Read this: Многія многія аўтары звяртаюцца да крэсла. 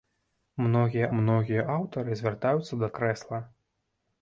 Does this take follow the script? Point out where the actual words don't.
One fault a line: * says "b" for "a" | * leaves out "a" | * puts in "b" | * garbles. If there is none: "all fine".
all fine